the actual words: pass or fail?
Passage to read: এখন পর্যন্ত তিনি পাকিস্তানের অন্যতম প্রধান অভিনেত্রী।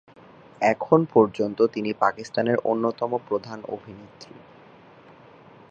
pass